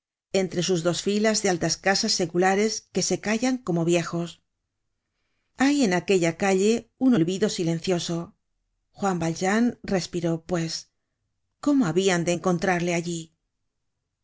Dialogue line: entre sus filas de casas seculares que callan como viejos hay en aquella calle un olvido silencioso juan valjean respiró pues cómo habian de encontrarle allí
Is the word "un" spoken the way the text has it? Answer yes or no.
yes